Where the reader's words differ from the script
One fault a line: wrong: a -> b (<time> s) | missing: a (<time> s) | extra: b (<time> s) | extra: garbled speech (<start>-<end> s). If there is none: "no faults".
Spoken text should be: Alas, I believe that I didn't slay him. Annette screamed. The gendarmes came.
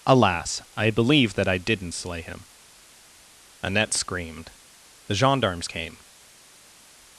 no faults